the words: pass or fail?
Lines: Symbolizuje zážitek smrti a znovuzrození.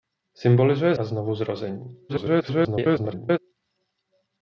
fail